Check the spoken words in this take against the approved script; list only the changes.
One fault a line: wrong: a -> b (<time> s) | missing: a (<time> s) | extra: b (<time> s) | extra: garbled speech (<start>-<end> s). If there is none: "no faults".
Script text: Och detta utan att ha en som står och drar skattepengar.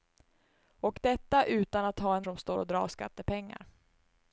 no faults